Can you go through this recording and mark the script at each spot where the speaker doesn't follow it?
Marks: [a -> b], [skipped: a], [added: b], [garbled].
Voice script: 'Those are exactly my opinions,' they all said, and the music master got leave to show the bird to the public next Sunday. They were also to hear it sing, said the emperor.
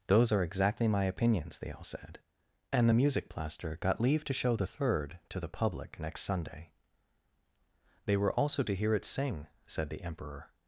'Those are exactly my opinions,' they all said, and the music [master -> plaster] got leave to show the [bird -> third] to the public next Sunday. They were also to hear it sing, said the emperor.